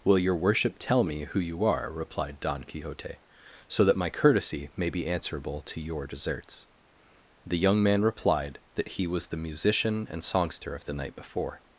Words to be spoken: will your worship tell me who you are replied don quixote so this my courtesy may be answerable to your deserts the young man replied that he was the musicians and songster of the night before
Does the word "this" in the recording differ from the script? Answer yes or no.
yes